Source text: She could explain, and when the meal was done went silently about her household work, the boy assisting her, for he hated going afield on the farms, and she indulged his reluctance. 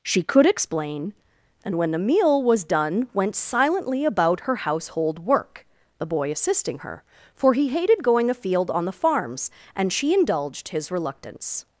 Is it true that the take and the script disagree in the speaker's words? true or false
false